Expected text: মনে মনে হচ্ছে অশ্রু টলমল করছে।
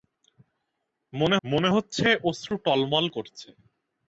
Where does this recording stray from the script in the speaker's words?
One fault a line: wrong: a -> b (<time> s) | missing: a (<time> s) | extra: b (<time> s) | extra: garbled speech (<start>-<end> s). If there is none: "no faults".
no faults